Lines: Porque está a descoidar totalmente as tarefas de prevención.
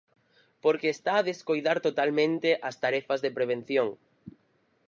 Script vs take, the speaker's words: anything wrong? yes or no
no